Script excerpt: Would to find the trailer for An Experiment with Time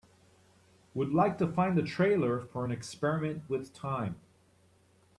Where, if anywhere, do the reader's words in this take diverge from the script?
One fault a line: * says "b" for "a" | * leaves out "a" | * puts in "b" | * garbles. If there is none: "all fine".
* puts in "like"